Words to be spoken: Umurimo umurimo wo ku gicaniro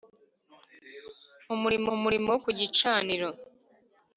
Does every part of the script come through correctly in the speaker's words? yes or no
yes